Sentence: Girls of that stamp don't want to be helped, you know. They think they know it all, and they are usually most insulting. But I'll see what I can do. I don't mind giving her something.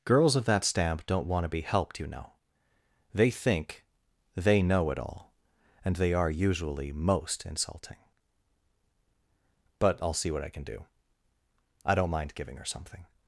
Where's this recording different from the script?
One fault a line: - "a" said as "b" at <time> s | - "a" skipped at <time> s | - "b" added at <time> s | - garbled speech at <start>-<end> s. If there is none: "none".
none